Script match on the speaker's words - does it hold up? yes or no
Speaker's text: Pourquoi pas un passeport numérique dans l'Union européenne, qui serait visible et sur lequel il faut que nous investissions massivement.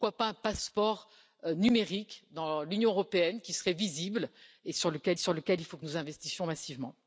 no